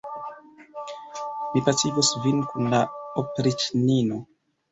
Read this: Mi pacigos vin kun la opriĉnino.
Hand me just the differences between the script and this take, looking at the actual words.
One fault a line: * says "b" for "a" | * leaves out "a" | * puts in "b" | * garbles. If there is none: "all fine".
all fine